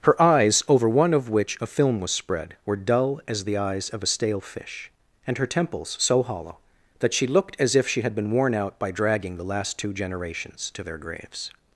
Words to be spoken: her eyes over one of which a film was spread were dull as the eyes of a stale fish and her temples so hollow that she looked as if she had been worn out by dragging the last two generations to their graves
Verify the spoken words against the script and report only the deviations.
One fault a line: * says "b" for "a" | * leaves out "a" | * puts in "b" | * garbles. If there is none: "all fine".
all fine